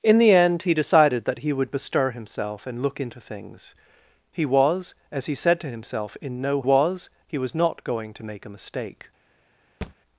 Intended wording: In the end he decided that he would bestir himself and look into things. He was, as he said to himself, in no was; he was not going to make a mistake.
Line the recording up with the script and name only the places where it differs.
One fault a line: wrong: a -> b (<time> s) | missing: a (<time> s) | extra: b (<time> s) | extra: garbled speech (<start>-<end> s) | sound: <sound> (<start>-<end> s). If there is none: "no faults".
sound: thud (9.8-9.9 s)